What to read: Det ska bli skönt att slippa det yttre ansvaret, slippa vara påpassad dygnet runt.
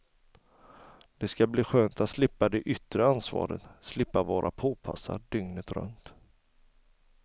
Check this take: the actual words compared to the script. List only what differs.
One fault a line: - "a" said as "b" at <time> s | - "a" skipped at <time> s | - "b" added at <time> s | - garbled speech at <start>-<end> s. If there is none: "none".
none